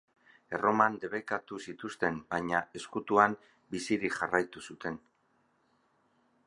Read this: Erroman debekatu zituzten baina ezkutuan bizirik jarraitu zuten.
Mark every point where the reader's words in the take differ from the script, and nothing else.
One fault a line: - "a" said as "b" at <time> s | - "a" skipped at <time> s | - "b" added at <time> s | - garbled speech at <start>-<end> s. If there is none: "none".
none